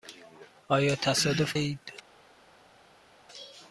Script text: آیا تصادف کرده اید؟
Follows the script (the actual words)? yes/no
no